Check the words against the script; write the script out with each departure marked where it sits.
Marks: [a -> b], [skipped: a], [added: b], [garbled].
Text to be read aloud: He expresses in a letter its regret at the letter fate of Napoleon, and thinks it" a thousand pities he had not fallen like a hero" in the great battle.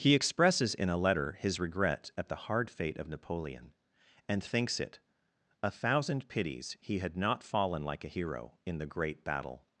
He expresses in a letter [its -> his] regret at the [letter -> hard] fate of Napoleon, and thinks it" a thousand pities he had not fallen like a hero" in the great battle.